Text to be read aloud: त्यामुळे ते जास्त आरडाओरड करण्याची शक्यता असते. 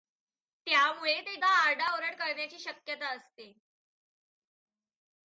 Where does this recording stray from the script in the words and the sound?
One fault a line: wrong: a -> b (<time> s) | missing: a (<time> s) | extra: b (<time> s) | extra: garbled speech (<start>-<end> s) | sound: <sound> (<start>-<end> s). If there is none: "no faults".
missing: जास्त (1.4 s)